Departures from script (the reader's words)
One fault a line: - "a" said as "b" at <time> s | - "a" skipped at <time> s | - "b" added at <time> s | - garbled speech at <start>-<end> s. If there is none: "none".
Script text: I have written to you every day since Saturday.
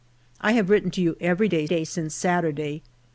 - "day" added at 1.6 s